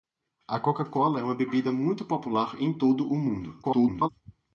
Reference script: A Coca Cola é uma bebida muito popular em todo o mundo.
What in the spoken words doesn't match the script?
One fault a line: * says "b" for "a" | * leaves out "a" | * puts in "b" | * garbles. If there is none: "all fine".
* garbles